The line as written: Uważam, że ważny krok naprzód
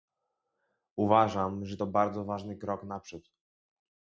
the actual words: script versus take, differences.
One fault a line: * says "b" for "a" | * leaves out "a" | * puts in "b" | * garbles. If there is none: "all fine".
* puts in "to bardzo"